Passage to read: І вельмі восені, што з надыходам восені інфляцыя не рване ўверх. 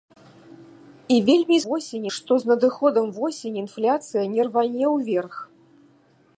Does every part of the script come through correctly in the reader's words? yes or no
yes